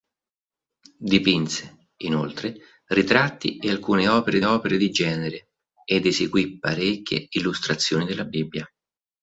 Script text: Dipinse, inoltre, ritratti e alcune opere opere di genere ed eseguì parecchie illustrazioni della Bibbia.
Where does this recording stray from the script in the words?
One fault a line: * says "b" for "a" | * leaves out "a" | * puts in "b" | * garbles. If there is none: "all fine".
all fine